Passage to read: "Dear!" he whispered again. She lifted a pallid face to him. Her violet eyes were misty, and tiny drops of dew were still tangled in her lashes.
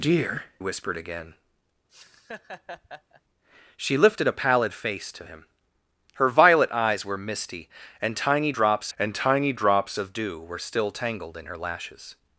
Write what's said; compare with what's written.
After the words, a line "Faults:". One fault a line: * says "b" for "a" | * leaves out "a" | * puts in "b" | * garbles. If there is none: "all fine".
"Dear!" whispered again. She lifted a pallid face to him. Her violet eyes were misty, and tiny drops and tiny drops of dew were still tangled in her lashes.
Faults:
* leaves out "he"
* puts in "and tiny drops"